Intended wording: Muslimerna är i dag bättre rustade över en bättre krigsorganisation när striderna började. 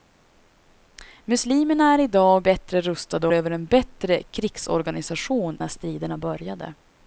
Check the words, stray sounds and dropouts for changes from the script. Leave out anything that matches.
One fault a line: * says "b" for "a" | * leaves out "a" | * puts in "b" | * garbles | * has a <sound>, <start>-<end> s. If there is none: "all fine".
all fine